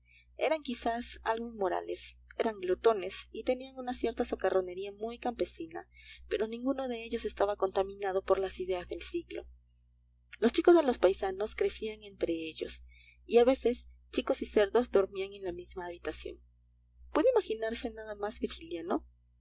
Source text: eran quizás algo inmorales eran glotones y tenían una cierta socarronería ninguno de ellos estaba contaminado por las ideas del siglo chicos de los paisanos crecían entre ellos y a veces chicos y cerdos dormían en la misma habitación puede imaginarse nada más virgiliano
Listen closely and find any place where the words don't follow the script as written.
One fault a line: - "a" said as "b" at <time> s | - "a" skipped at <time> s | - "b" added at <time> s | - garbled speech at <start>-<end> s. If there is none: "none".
- "muy campesina pero" added at 4.9 s
- "los" added at 10.4 s